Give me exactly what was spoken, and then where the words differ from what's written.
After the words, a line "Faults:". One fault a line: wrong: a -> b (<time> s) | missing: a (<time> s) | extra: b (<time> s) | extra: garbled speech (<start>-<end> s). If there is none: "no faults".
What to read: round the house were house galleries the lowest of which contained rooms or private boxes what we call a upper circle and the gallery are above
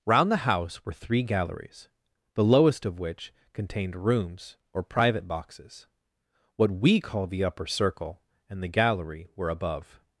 round the house were three galleries the lowest of which contained rooms or private boxes what we call the upper circle and the gallery were above
Faults:
wrong: house -> three (0.9 s)
wrong: a -> the (7.3 s)
wrong: are -> were (9.3 s)